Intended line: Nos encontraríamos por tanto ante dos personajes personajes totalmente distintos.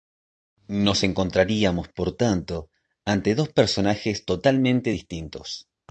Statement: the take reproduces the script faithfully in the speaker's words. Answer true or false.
false